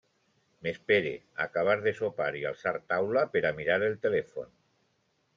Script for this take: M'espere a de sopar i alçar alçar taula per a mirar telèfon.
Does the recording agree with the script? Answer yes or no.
no